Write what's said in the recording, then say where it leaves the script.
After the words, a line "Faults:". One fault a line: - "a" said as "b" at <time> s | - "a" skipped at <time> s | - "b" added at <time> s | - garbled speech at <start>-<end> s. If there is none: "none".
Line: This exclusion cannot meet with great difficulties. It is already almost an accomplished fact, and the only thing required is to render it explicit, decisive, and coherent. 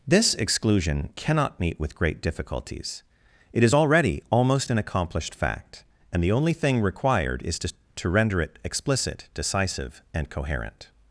This exclusion cannot meet with great difficulties. It is already almost an accomplished fact, and the only thing required is to to render it explicit, decisive, and coherent.
Faults:
- "to" added at 7.9 s